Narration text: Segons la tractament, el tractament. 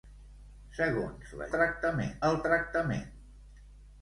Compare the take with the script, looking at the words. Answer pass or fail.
pass